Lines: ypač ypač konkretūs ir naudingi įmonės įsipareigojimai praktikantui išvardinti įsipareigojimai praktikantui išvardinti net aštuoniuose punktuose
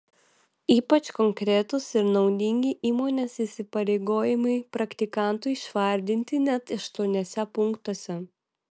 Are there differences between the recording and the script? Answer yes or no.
yes